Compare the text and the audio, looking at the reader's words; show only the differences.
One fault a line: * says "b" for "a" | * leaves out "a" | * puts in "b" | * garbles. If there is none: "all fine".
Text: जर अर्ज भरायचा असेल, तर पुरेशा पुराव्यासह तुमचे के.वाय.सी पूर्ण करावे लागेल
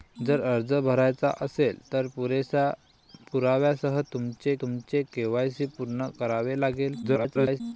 * puts in "तुमचे"
* garbles